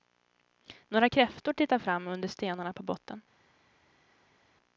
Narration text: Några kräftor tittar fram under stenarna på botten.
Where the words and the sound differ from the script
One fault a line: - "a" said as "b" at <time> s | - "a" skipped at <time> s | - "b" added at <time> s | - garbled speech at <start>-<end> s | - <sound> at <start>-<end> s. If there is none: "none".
none